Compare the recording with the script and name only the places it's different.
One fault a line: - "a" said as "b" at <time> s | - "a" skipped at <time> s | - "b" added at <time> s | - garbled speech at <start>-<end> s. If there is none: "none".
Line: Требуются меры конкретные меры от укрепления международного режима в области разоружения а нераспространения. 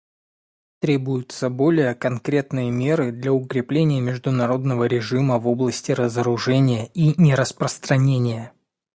- "меры" said as "более" at 1.5 s
- "от" said as "для" at 3.1 s
- "а" said as "и" at 6.9 s